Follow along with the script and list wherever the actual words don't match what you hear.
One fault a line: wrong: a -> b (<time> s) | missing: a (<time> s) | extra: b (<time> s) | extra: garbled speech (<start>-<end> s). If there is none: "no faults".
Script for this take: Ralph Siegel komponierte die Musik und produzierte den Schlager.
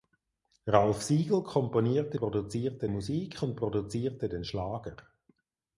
wrong: die -> produzierte (2.1 s)